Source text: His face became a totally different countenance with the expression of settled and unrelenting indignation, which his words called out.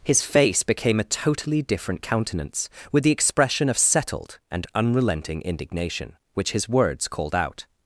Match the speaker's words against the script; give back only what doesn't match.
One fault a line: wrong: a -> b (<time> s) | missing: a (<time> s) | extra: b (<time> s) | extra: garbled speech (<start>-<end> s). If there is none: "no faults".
no faults